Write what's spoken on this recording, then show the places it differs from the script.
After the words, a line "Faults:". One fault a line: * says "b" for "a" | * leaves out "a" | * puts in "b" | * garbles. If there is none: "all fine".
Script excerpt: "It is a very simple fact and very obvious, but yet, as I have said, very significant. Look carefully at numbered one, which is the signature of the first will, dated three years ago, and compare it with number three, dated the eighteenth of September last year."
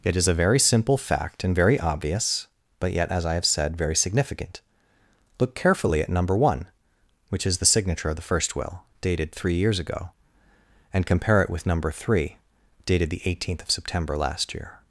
"It is a very simple fact and very obvious, but yet, as I have said, very significant. Look carefully at number one, which is the signature of the first will, dated three years ago, and compare it with number three, dated the eighteenth of September last year."
Faults:
* says "number" for "numbered"